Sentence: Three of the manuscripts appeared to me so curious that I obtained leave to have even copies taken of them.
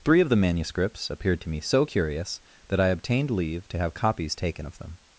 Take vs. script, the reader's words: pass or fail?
fail